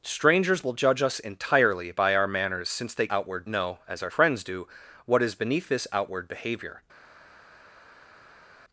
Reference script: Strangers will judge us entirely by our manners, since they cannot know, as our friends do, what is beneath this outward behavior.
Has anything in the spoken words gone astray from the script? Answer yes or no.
yes